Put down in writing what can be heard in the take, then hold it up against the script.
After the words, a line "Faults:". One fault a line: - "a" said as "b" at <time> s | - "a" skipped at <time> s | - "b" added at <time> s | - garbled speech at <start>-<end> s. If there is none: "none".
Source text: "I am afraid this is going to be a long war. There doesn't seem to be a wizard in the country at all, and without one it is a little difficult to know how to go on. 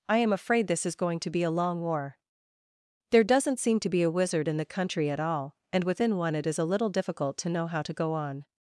"I am afraid this is going to be a long war. There doesn't seem to be a wizard in the country at all, and within one it is a little difficult to know how to go on.
Faults:
- "without" said as "within" at 5.8 s